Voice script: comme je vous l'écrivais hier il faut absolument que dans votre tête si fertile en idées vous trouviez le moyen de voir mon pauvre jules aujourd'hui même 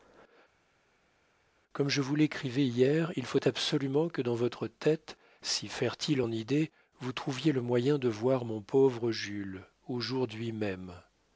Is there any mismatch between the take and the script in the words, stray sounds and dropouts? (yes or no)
no